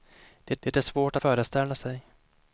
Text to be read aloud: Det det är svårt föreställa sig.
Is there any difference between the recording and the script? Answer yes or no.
no